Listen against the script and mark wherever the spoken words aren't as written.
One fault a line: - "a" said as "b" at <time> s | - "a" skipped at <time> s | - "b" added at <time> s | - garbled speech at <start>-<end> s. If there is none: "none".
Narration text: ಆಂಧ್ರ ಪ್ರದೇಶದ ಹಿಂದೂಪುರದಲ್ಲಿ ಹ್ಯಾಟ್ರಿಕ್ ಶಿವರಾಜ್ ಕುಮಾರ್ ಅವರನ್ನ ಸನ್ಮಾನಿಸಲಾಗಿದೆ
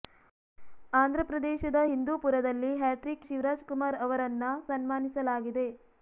none